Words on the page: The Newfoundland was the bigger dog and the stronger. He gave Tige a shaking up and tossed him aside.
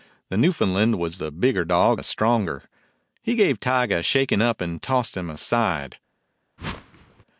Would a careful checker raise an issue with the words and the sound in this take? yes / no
yes